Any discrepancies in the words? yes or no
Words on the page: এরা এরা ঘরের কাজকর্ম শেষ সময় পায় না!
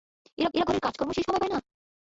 no